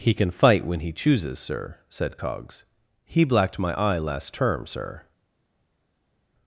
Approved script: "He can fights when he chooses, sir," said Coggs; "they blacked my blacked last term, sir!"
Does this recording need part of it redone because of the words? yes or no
yes